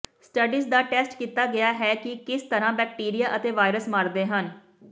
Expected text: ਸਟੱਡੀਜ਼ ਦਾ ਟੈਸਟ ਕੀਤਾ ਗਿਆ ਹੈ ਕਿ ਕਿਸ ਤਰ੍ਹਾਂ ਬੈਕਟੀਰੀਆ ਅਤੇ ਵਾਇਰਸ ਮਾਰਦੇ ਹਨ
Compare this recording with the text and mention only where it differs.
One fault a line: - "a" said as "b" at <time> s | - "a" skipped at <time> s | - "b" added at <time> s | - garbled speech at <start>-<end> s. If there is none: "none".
none